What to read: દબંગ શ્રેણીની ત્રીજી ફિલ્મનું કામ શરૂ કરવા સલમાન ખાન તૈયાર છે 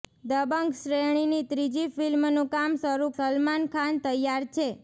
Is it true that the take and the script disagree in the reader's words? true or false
true